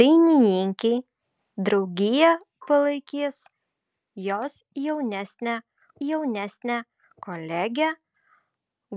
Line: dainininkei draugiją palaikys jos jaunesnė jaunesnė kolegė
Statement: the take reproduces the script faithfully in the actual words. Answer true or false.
true